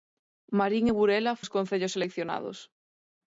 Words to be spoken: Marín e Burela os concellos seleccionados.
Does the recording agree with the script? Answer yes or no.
yes